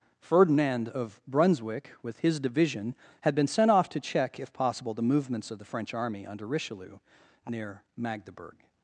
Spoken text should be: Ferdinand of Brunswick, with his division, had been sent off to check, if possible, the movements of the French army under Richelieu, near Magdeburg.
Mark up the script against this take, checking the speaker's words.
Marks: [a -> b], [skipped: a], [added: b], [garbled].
Ferdinand of Brunswick, with his division, had been sent off to check, if possible, the movements of the French army under Richelieu, near Magdeburg.